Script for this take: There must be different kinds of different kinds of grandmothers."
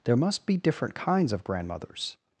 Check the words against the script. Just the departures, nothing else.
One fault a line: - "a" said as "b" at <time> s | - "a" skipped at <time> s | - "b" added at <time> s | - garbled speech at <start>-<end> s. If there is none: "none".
- "different kinds of" skipped at 1.4 s